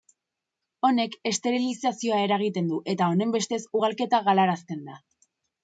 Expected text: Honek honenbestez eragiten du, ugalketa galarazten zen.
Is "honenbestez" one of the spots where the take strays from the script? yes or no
yes